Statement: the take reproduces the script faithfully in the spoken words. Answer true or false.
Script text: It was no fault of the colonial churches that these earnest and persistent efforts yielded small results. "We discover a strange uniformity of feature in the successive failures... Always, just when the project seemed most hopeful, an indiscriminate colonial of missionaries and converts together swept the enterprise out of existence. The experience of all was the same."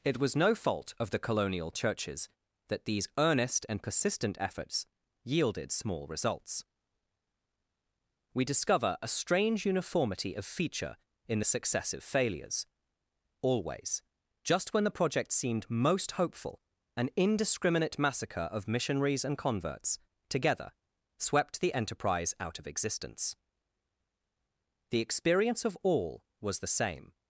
false